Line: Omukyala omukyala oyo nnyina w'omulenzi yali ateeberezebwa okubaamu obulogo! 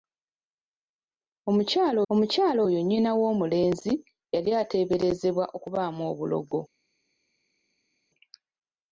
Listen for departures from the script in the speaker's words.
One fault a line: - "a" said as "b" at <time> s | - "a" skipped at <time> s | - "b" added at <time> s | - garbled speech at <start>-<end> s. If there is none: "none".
none